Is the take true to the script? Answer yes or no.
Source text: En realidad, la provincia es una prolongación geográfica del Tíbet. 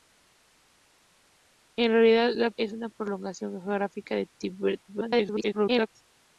no